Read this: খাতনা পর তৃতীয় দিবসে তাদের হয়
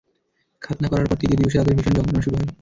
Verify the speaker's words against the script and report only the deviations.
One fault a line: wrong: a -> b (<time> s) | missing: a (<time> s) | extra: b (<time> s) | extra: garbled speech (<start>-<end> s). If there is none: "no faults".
extra: করার (0.9 s)
extra: ভীষণ যন্ত্রণা শুরু (1.8 s)